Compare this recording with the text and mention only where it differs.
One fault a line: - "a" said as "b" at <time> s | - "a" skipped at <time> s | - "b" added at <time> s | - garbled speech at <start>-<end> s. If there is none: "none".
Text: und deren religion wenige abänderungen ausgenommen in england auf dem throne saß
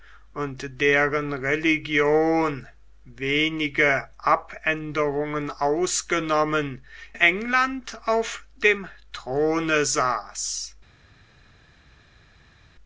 - "in" skipped at 6.8 s